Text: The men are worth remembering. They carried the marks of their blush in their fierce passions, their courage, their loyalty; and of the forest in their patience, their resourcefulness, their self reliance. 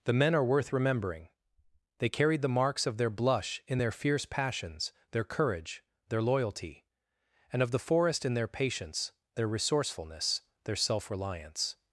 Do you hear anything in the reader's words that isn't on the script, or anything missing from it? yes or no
no